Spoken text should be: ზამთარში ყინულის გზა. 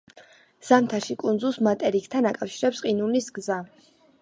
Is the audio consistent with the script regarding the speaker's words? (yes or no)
no